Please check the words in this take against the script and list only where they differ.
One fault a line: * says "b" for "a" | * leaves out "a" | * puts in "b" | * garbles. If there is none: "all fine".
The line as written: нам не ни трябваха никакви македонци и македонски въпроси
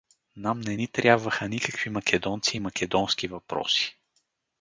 all fine